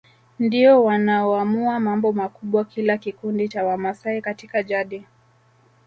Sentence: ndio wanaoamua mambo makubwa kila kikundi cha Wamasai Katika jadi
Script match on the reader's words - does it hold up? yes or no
yes